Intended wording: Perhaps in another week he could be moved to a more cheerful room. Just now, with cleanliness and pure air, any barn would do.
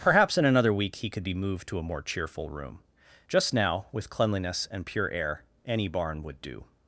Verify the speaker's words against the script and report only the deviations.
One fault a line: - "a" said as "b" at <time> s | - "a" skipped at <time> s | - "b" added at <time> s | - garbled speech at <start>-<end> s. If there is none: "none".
none